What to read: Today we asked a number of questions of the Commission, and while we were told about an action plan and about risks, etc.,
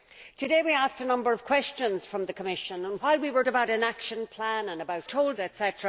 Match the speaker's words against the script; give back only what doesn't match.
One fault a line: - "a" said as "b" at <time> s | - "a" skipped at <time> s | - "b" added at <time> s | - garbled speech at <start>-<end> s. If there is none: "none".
- "told" skipped at 3.4 s
- "risks" said as "told" at 5.0 s